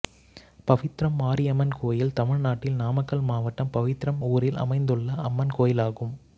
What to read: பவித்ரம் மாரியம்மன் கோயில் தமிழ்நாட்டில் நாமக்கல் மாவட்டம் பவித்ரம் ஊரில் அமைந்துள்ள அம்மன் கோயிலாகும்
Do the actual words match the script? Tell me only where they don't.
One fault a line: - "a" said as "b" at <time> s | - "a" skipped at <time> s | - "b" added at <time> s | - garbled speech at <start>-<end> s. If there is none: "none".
none